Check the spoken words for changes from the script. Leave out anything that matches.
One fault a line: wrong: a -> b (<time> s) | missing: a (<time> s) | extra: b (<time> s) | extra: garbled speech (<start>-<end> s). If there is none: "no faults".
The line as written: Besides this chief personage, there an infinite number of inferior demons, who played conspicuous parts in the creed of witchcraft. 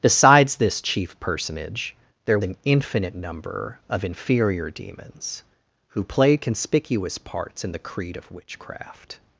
no faults